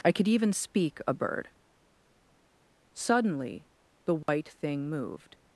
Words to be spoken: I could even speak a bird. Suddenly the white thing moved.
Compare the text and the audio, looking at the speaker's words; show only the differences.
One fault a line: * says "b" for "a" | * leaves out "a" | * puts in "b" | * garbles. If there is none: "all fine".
all fine